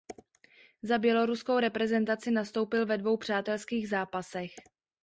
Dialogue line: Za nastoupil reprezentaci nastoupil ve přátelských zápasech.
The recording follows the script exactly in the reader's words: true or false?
false